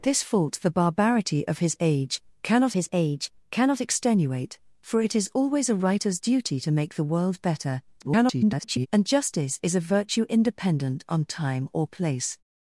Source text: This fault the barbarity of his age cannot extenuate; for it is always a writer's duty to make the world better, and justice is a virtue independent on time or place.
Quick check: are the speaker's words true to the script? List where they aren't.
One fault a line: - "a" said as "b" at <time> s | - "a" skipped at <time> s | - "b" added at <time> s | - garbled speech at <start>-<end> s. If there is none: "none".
- "his age cannot" added at 2.7 s
- garbled speech at 8.0-8.9 s